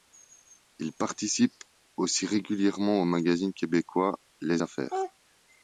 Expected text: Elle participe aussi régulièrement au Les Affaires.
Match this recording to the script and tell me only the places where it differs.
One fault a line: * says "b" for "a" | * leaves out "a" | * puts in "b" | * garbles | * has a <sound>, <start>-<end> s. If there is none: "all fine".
* says "Il" for "Elle"
* puts in "magazine québécois"